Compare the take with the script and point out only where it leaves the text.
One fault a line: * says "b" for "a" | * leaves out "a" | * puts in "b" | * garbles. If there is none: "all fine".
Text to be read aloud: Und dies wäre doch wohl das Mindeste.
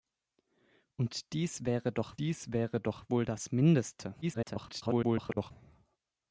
* puts in "dies wäre doch"
* garbles